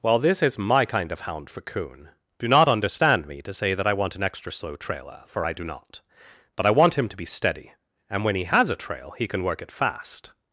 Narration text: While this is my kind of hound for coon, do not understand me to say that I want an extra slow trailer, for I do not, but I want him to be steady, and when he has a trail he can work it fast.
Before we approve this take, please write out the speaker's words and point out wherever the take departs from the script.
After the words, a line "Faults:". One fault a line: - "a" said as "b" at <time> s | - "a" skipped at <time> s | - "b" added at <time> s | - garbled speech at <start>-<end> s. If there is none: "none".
While this is my kind of hound for coon, do not understand me to say that I want an extra slow trailer, for I do not, but I want him to be steady, and when he has a trail he can work it fast.
Faults:
none